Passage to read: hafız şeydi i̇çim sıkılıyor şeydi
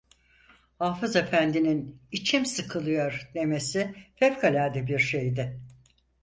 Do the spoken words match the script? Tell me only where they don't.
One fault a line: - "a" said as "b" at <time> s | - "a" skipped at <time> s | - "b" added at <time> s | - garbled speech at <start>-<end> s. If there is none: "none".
- "şeydi" said as "efendinin" at 1.1 s
- "demesi fevkalade bir" added at 3.3 s